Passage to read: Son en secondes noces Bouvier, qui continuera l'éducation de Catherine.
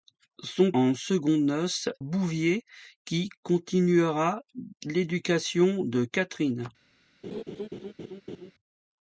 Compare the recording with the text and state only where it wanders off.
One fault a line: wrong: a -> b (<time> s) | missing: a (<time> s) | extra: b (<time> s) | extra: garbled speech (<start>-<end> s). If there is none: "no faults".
no faults